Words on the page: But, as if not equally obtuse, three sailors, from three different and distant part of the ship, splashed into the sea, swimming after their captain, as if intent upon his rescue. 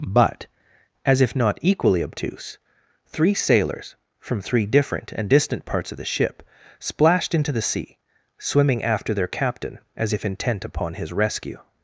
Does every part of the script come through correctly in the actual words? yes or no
no